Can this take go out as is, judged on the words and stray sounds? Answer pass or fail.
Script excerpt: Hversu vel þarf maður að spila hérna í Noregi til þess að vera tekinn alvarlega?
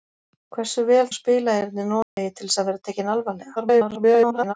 fail